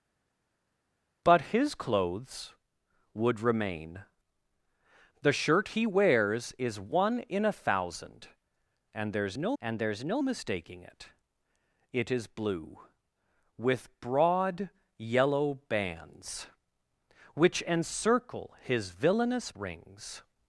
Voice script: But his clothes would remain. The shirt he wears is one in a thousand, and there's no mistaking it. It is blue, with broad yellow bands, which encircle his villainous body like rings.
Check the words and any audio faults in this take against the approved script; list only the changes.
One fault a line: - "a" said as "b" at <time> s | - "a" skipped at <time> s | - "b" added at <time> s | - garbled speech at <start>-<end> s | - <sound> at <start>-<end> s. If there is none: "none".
- "and there's no" added at 9.6 s
- "body like" skipped at 19.5 s